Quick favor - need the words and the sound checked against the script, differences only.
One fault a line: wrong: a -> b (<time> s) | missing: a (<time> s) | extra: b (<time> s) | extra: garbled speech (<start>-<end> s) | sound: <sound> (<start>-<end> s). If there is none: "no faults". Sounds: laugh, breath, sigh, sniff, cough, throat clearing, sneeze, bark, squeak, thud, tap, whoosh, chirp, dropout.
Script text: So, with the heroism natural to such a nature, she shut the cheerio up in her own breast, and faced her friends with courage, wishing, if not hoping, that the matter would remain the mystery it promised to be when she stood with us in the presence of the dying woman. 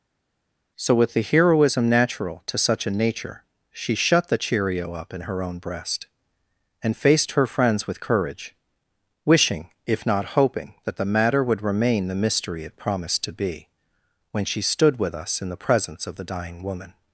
no faults